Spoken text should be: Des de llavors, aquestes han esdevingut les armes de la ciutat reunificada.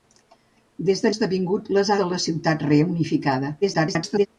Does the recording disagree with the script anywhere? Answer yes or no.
yes